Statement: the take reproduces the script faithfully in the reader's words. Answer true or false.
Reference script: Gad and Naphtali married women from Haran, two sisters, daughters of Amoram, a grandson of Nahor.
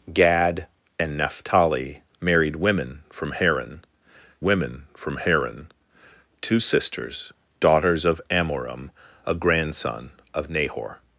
false